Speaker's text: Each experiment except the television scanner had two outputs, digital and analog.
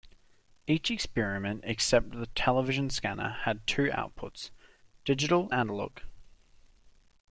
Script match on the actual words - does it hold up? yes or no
no